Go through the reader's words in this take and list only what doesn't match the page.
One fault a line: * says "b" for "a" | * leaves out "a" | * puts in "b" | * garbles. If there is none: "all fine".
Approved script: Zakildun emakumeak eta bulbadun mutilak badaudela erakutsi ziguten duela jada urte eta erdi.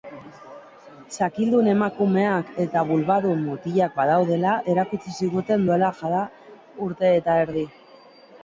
all fine